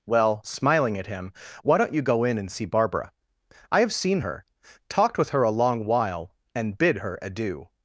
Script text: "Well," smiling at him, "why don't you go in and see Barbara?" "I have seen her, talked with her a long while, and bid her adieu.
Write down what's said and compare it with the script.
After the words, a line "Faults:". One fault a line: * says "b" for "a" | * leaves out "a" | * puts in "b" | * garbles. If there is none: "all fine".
"Well," smiling at him, "why don't you go in and see Barbara?" "I have seen her, talked with her a long while, and bid her adieu.
Faults:
all fine